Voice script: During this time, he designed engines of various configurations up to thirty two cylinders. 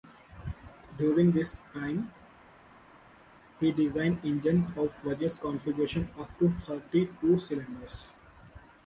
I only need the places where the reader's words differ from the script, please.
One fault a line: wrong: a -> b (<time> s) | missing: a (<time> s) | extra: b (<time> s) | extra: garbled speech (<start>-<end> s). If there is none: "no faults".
no faults